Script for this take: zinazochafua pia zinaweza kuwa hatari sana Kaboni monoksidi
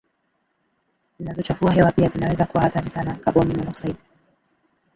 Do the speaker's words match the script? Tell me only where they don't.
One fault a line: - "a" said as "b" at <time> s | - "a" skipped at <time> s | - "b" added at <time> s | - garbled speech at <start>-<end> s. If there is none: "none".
- "hewa" added at 1.7 s